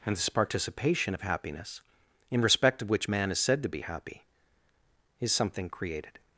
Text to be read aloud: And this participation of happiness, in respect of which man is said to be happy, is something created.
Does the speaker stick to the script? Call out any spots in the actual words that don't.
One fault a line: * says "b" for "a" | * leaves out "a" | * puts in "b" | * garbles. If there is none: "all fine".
all fine